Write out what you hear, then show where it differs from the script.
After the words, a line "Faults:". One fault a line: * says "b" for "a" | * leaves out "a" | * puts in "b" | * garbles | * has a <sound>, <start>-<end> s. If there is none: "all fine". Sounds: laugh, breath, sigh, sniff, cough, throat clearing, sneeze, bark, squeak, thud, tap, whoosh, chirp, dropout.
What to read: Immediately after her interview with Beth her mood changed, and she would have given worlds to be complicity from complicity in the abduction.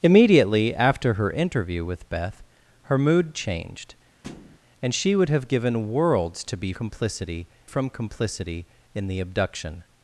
Immediately after her interview with Beth her mood changed, and she would have given worlds to be complicity from complicity in the abduction.
Faults:
* has a thud, 4.2-4.6 s